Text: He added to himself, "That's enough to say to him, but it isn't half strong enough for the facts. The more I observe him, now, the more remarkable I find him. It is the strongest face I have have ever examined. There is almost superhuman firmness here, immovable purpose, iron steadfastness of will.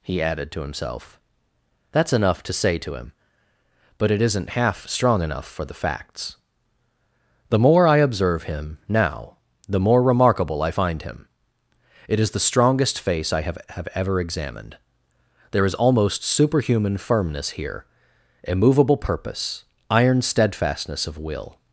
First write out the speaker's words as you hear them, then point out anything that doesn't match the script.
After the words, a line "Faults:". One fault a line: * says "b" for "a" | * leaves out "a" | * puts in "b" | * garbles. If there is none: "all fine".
He added to himself, "That's enough to say to him, but it isn't half strong enough for the facts. The more I observe him, now, the more remarkable I find him. It is the strongest face I have have ever examined. There is almost superhuman firmness here, immovable purpose, iron steadfastness of will.
Faults:
all fine